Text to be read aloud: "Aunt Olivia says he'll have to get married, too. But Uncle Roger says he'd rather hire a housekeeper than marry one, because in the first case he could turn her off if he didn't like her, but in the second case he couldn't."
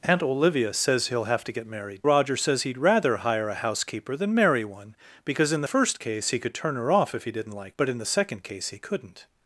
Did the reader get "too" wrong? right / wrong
wrong